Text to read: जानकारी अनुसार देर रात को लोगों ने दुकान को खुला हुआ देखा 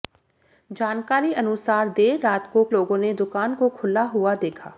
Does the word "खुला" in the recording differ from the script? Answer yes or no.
no